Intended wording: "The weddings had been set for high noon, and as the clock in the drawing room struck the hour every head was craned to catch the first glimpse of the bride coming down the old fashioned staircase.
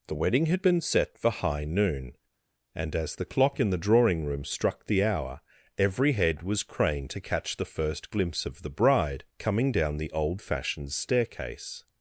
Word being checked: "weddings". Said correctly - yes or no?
no